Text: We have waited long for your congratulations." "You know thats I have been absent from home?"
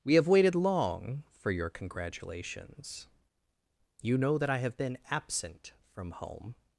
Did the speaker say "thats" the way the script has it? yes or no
no